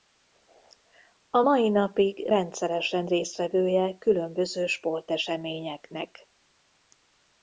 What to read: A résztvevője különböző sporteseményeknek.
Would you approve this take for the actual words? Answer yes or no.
no